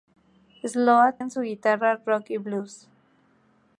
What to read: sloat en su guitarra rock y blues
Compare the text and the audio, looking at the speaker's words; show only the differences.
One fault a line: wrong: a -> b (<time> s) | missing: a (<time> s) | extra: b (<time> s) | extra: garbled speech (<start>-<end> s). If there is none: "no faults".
no faults